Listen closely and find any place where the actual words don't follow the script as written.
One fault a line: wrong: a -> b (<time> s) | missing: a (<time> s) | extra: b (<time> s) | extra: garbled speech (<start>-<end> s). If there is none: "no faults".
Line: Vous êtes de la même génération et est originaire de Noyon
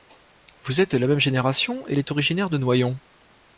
no faults